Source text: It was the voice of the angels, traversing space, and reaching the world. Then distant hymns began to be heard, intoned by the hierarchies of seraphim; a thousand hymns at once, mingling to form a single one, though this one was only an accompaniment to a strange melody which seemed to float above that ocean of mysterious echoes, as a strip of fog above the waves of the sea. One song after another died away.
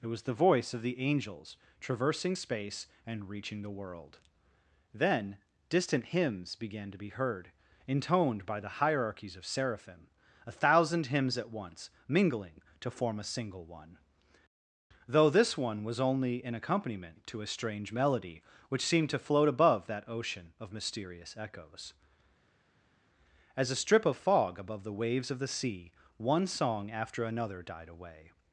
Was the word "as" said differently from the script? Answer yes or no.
no